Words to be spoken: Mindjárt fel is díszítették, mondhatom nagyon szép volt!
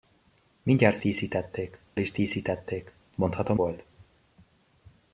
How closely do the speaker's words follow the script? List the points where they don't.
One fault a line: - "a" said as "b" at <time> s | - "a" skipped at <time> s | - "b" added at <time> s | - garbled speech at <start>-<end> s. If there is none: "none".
- "fel" said as "díszítették" at 1.0 s
- "nagyon szép" skipped at 3.6 s